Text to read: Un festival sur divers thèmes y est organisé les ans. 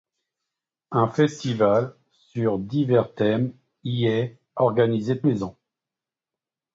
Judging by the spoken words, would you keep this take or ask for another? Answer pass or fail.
pass